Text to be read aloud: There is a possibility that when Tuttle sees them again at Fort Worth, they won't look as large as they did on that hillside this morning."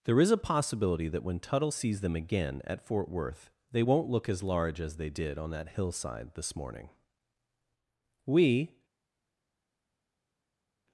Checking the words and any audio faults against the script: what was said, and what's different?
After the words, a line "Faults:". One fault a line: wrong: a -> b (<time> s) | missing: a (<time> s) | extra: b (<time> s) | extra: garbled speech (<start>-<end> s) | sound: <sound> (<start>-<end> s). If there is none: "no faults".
There is a possibility that when Tuttle sees them again at Fort Worth, they won't look as large as they did on that hillside this morning." We
Faults:
extra: We (8.2 s)